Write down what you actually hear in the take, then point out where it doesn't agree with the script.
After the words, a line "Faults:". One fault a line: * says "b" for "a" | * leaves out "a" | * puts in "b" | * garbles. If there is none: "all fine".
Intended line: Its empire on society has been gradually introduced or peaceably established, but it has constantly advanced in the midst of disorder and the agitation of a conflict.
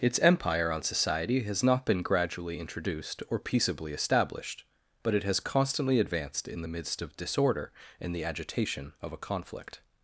Its empire on society has not been gradually introduced or peaceably established, but it has constantly advanced in the midst of disorder and the agitation of a conflict.
Faults:
* puts in "not"